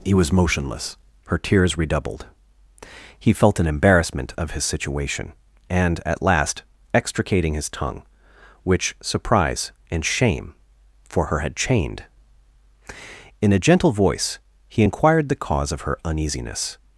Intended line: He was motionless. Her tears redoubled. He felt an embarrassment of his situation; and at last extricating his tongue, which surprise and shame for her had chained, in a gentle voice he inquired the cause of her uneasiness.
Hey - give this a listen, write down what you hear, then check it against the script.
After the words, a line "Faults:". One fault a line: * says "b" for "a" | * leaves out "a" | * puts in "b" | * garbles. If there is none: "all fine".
He was motionless. Her tears redoubled. He felt an embarrassment of his situation; and at last extricating his tongue, which surprise and shame for her had chained, in a gentle voice he inquired the cause of her uneasiness.
Faults:
all fine